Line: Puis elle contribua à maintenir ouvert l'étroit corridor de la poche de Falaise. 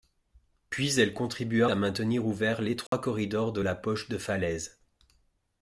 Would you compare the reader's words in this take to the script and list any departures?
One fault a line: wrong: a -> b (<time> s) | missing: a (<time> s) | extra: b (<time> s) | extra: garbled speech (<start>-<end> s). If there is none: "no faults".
no faults